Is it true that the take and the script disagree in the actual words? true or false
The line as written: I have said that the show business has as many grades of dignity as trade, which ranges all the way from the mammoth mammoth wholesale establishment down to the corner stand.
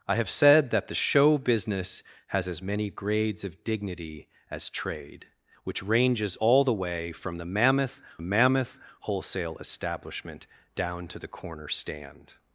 false